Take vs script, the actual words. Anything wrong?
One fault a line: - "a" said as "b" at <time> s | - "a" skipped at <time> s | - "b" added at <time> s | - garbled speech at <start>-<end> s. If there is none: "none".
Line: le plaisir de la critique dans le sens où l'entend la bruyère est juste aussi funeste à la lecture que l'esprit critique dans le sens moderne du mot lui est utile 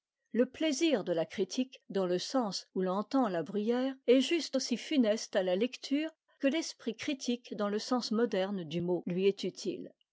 none